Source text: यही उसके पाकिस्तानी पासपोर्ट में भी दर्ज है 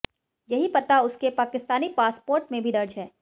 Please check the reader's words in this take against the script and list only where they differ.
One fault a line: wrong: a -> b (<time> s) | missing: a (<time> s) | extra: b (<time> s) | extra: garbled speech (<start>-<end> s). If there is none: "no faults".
extra: पता (0.7 s)